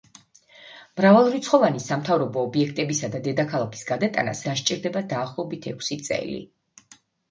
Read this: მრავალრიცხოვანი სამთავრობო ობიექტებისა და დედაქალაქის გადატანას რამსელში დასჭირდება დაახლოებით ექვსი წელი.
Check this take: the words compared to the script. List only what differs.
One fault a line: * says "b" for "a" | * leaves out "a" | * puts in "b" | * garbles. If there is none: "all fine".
* leaves out "რამსელში"